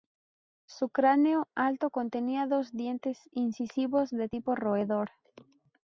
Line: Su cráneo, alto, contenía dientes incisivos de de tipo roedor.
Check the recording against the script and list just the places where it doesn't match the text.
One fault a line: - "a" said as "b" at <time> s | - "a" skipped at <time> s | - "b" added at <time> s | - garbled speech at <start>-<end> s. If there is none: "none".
- "dos" added at 2.5 s
- "de" skipped at 4.3 s